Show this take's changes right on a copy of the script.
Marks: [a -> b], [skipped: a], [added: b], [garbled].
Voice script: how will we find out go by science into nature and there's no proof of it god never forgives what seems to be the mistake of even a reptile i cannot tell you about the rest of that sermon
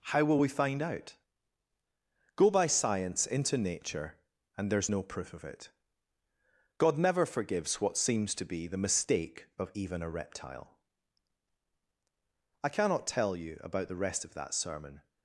how will we find out go by science into nature and there's no proof of it god never forgives what seems to be the mistake of even a reptile i cannot tell you about the rest of that sermon